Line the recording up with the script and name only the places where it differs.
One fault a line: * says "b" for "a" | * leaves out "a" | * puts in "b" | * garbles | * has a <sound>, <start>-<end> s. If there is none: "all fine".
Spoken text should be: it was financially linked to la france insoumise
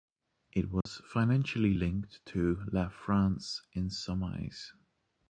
* has a dropout, 0.8-0.9 s